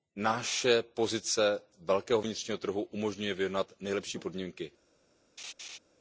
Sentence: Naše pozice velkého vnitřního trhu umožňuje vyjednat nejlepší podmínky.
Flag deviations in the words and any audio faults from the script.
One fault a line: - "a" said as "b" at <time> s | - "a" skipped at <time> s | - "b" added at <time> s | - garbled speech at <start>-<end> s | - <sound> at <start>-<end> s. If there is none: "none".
- laugh at 5.4-5.8 s